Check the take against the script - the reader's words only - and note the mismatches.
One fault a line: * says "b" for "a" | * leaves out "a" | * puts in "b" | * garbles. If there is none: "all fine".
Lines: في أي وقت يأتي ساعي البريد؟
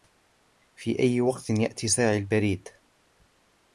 all fine